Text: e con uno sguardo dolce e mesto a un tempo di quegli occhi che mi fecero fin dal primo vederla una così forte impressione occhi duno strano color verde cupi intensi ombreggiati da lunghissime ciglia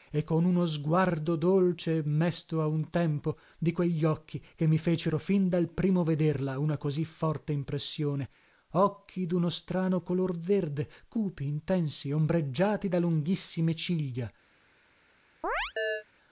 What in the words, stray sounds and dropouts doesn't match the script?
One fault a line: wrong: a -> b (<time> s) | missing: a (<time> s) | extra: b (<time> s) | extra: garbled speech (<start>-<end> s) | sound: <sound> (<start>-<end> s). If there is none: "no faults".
sound: chirp (15.4-16.0 s)